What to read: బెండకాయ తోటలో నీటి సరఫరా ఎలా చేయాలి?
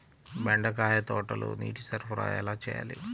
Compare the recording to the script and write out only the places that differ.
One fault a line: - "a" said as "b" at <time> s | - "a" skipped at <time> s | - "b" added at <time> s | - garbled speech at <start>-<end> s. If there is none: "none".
none